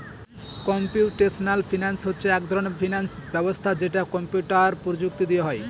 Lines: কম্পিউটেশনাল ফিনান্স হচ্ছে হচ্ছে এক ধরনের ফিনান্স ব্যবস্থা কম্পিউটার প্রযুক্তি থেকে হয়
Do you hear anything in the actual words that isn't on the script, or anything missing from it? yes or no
yes